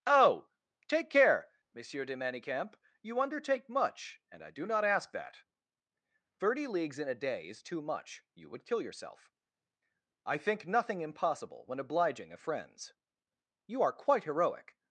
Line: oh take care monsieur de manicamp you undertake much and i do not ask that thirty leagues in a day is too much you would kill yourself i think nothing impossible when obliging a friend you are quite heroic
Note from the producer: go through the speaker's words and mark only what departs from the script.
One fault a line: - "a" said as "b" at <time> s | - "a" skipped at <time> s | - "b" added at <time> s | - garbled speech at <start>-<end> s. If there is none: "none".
- "friend" said as "friends" at 12.4 s